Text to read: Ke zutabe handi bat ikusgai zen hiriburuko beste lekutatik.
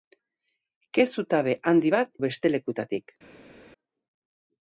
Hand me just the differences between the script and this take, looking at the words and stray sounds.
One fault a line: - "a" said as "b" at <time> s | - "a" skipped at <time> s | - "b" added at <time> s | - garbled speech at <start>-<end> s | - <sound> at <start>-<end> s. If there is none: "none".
- "ikusgai zen hiriburuko" skipped at 2.1 s